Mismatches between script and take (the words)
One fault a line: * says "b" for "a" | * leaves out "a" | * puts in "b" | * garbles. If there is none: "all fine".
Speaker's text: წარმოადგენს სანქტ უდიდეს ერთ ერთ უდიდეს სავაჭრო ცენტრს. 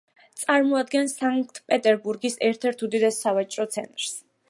* says "პეტერბურგის" for "უდიდეს"